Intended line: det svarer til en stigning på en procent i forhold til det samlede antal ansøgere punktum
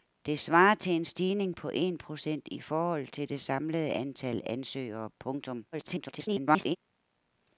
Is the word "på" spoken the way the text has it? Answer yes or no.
yes